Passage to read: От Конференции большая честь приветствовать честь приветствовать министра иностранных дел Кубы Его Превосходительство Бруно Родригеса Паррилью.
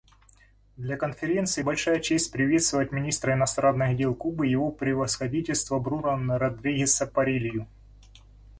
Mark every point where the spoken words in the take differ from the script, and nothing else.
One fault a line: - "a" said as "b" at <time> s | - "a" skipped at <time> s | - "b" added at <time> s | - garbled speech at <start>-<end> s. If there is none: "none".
- "От" said as "Для" at 0.8 s
- "честь приветствовать" skipped at 2.9 s